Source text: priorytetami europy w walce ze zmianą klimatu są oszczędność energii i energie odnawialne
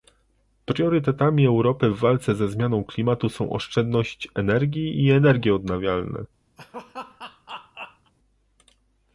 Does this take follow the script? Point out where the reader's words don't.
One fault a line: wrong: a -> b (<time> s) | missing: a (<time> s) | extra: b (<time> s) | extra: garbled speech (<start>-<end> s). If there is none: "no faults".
no faults